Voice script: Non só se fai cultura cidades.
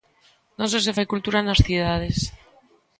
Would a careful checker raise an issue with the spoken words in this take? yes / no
yes